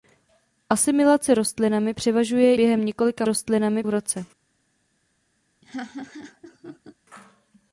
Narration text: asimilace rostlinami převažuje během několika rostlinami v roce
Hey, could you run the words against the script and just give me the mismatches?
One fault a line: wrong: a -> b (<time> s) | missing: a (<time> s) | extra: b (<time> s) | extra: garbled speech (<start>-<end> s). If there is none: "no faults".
no faults